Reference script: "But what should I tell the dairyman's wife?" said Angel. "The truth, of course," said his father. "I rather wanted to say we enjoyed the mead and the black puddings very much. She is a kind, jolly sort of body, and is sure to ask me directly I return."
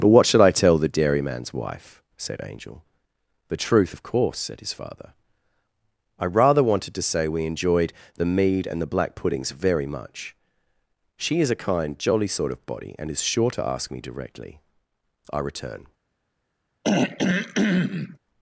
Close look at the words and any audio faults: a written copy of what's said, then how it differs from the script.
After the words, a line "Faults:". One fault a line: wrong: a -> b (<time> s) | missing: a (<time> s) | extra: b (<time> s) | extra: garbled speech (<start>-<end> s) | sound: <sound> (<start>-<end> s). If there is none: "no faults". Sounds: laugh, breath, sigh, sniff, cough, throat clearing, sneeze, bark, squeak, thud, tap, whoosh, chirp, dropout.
"But what should I tell the dairyman's wife?" said Angel. "The truth, of course," said his father. "I rather wanted to say we enjoyed the mead and the black puddings very much. She is a kind, jolly sort of body, and is sure to ask me directly I return."
Faults:
sound: throat clearing (16.8-18.2 s)